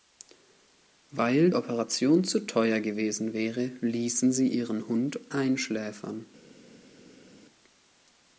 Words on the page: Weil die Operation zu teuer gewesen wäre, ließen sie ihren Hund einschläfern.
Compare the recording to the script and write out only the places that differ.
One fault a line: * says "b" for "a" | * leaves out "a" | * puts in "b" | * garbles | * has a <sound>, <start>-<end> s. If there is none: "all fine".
* leaves out "die"